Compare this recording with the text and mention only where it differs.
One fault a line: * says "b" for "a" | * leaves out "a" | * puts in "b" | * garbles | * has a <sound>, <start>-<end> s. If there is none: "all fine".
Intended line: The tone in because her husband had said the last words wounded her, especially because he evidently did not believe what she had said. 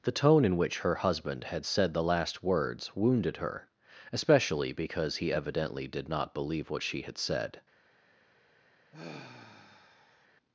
* says "which" for "because"
* has a sigh, 8.9-10.3 s